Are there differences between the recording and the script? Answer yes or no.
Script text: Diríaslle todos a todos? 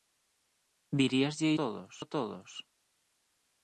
no